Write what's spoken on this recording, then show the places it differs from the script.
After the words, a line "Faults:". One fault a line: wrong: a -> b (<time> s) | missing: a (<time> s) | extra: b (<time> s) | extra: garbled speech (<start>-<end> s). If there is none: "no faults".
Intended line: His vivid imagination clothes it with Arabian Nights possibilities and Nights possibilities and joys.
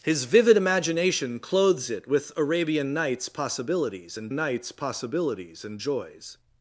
His vivid imagination clothes it with Arabian Nights possibilities and Nights possibilities and joys.
Faults:
no faults